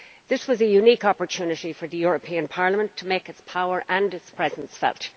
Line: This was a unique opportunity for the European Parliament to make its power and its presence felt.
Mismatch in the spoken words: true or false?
false